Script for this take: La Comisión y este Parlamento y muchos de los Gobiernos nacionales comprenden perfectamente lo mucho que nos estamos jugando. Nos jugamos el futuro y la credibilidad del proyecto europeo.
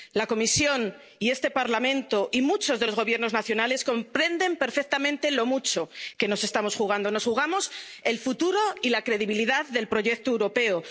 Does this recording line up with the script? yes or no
yes